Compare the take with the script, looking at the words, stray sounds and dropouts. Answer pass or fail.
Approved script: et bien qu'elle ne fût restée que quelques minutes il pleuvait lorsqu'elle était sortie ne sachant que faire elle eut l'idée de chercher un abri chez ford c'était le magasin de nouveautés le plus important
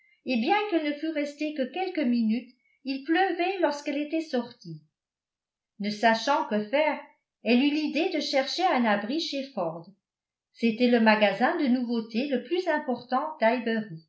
pass